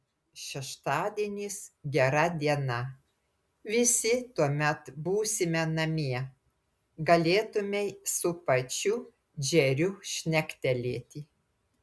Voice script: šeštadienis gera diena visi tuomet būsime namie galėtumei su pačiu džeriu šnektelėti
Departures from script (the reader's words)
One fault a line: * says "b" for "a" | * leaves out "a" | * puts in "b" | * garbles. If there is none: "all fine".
all fine